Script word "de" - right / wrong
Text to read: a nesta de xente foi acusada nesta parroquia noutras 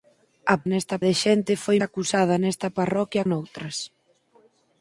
right